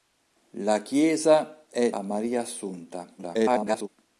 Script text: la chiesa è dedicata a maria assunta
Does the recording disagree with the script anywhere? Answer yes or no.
yes